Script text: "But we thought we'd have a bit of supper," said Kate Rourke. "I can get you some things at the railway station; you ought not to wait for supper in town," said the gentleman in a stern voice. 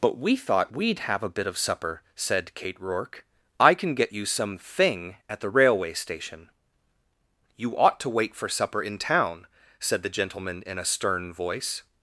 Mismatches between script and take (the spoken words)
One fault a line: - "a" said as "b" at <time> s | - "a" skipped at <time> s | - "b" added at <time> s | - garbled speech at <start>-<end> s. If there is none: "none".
- "things" said as "thing" at 4.6 s
- "not" skipped at 8.0 s